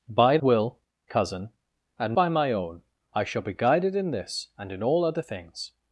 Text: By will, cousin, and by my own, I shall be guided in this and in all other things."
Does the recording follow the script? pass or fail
pass